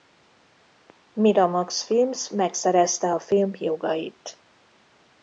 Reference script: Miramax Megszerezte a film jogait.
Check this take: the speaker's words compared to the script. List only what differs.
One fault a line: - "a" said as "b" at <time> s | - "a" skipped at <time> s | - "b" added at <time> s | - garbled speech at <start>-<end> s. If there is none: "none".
- "Films" added at 1.8 s